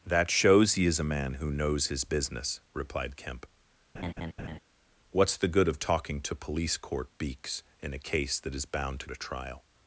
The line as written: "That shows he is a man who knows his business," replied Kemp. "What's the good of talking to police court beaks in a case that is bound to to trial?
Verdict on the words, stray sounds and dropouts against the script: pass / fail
fail